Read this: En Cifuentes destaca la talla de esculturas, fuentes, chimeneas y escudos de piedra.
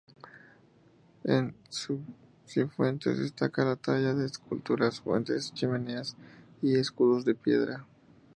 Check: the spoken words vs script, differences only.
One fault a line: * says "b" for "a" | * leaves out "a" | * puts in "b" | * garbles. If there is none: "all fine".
all fine